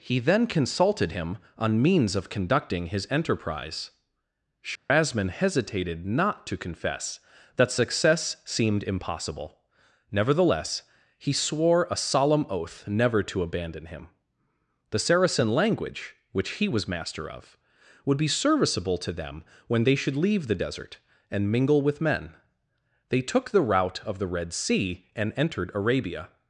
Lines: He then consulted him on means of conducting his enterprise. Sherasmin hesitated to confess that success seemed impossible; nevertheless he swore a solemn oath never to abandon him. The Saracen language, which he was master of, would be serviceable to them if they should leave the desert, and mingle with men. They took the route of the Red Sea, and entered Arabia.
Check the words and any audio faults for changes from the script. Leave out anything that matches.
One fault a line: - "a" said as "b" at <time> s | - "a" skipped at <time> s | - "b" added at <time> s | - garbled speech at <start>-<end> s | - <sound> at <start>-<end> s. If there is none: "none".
- dropout at 4.8-4.9 s
- "not" added at 6.1 s
- "if" said as "when" at 19.6 s